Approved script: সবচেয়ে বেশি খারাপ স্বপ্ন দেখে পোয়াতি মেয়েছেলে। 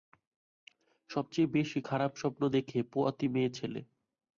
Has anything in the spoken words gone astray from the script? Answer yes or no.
no